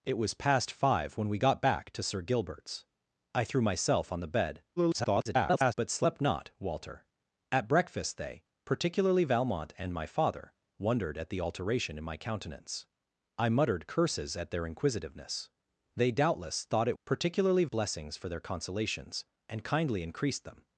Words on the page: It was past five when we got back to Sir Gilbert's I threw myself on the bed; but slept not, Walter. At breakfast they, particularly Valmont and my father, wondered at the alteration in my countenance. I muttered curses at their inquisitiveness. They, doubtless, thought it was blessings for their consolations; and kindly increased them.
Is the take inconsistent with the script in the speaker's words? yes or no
yes